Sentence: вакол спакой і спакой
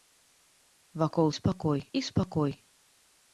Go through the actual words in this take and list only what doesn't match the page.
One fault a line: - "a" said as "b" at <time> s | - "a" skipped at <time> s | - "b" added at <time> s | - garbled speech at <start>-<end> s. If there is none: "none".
none